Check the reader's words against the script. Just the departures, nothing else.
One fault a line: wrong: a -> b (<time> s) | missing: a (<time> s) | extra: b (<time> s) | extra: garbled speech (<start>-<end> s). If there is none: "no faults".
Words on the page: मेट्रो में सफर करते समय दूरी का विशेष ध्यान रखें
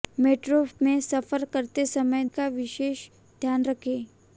missing: दूरी (2.2 s)